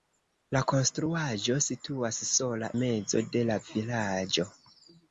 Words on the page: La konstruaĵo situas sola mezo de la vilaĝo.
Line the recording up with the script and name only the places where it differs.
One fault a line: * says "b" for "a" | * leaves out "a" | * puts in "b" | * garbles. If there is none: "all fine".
all fine